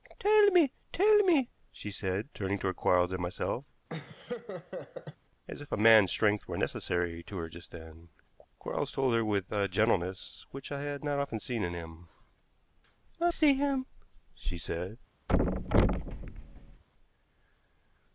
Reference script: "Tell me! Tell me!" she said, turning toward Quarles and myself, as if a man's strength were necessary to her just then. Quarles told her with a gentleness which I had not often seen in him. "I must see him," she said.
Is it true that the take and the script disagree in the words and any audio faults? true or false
true